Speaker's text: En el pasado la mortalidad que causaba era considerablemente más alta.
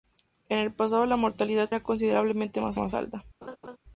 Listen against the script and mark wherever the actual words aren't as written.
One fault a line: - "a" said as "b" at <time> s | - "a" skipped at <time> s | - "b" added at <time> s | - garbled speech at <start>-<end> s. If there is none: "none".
- "que causaba" skipped at 1.7 s
- "más" added at 2.7 s